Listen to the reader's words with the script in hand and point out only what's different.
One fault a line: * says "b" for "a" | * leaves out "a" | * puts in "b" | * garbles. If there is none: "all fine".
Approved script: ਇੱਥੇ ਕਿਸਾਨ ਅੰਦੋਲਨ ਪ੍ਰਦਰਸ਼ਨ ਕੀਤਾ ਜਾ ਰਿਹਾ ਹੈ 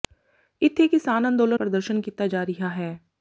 all fine